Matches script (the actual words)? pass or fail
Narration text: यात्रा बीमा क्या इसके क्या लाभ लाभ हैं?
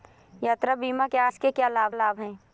pass